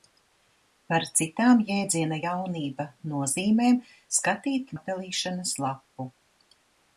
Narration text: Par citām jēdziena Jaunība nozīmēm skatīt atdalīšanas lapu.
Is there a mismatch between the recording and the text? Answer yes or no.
no